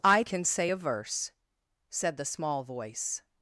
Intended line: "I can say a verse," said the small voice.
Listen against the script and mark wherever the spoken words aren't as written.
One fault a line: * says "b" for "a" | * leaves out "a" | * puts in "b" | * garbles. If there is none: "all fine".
all fine